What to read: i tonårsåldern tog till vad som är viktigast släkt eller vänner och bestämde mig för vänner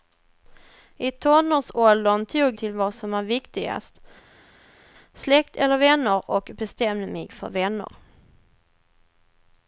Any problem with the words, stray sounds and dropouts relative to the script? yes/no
no